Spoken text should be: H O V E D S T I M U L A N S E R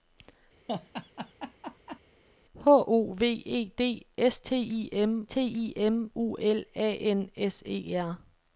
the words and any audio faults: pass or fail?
fail